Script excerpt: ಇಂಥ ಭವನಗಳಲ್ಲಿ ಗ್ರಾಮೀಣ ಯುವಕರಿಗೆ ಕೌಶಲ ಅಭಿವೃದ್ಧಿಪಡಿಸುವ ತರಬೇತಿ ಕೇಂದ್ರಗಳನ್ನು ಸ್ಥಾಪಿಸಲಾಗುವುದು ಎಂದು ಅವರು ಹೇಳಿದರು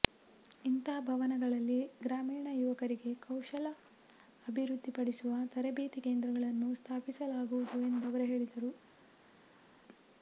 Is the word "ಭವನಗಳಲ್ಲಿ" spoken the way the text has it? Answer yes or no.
yes